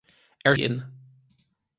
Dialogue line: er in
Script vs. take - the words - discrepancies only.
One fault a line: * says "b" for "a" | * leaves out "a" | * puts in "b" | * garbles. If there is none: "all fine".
all fine